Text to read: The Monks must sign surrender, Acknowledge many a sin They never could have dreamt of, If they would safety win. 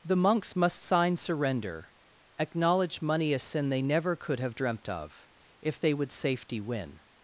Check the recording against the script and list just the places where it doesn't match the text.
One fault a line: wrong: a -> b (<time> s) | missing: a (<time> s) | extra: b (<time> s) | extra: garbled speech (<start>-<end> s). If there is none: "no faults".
wrong: many -> money (3.0 s)